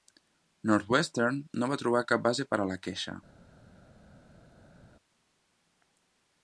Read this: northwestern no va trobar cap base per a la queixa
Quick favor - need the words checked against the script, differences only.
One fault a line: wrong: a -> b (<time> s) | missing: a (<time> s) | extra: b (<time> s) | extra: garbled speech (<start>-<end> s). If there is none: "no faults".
no faults